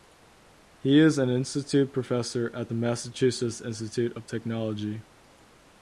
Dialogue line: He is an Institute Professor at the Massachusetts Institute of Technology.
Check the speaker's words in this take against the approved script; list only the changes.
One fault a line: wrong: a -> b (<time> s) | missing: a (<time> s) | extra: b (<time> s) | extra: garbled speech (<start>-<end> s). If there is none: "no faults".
no faults